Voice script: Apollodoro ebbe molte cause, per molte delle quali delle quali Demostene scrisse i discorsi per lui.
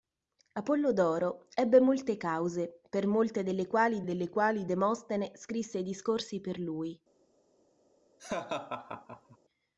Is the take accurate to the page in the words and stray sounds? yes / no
no